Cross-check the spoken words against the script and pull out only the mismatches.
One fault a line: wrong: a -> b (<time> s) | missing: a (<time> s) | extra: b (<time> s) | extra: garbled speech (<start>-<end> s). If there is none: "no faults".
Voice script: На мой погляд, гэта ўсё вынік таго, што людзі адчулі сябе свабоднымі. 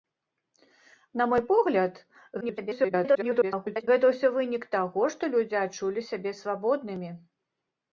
extra: garbled speech (2.4-3.9 s)